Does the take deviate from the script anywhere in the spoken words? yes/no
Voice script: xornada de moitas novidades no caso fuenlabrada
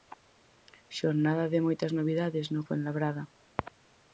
yes